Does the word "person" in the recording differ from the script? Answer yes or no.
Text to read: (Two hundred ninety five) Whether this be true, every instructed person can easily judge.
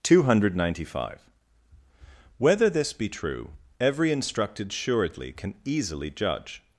yes